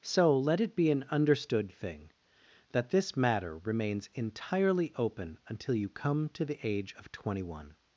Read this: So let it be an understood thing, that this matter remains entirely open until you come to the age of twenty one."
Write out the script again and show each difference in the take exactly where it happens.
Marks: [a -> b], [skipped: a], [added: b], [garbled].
So let it be an understood thing, that this matter remains entirely open until you come to the age of twenty one."